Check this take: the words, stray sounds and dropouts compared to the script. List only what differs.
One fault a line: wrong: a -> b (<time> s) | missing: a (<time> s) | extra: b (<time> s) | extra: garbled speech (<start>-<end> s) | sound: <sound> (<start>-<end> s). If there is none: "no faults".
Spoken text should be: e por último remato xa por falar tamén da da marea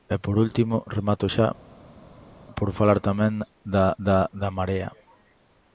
extra: da (4.4 s)